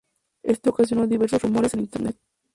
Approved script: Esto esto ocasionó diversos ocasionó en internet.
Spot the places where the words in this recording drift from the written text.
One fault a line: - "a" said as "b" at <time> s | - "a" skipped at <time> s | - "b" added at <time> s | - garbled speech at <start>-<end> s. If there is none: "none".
- "esto" skipped at 0.7 s
- "ocasionó" said as "rumores" at 1.4 s